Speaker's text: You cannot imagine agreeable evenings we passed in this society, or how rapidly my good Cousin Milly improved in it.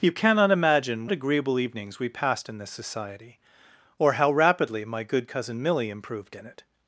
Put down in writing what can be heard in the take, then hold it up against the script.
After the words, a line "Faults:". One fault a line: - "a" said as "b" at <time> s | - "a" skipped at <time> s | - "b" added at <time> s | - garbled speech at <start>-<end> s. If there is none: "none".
You cannot imagine agreeable evenings we passed in this society, or how rapidly my good Cousin Milly improved in it.
Faults:
none